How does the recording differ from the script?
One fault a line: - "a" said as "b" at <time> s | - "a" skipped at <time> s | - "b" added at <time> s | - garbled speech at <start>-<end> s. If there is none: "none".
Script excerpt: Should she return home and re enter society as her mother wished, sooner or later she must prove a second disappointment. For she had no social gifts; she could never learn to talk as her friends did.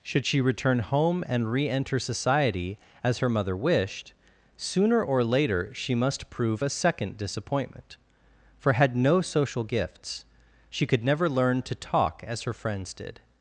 - "she" skipped at 8.7 s